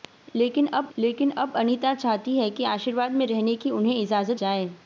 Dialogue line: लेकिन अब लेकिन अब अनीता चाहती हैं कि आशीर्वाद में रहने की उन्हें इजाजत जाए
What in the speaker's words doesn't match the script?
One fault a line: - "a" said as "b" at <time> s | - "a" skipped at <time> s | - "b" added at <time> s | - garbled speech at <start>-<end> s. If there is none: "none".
none